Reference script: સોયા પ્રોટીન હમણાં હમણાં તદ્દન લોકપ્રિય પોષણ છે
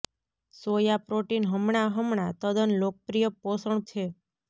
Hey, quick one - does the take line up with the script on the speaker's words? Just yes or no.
yes